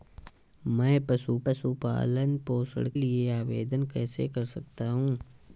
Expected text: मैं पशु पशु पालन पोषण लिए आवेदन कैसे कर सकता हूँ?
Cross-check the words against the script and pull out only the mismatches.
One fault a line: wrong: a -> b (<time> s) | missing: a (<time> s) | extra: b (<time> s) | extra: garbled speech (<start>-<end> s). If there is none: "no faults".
no faults